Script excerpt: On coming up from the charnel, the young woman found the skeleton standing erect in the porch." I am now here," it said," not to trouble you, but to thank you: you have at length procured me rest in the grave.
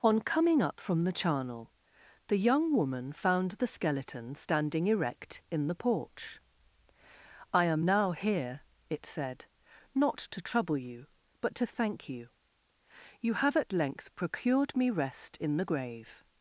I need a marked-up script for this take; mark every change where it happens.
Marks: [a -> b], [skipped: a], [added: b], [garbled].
On coming up from the charnel, the young woman found the skeleton standing erect in the porch." I am now here," it said," not to trouble you, but to thank you: you have at length procured me rest in the grave.